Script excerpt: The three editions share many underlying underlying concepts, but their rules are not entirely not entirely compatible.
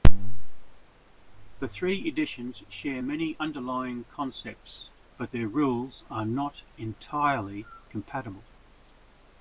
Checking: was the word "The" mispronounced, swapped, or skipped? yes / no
no